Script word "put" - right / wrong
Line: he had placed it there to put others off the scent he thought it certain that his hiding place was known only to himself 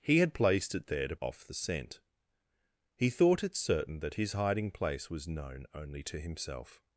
wrong